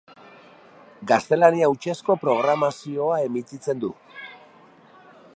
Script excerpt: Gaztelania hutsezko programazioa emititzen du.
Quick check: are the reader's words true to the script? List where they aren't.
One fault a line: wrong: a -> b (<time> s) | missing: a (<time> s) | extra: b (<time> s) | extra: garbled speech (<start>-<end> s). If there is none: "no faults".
no faults